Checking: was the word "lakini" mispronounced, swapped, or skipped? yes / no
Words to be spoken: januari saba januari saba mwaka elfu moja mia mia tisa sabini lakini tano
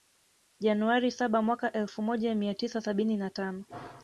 yes